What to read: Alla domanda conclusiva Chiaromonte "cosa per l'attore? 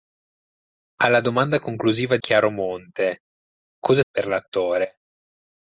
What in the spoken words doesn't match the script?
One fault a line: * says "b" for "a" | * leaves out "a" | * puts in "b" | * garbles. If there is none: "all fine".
all fine